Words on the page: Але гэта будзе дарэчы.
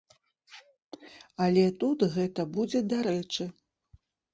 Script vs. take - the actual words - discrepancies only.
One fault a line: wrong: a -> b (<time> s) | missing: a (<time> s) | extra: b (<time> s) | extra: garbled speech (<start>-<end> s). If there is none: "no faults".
extra: тут (1.8 s)